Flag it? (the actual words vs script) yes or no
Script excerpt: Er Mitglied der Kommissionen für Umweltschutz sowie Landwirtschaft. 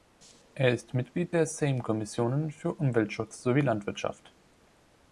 yes